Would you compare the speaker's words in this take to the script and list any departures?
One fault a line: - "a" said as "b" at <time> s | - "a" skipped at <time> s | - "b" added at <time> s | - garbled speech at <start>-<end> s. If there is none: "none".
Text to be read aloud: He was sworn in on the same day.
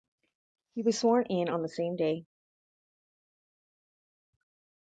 none